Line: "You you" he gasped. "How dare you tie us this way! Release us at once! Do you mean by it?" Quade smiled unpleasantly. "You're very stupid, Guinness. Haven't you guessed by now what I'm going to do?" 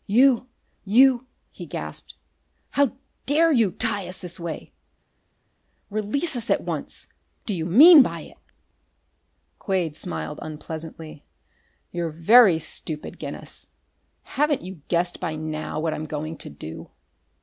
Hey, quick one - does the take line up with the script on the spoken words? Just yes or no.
yes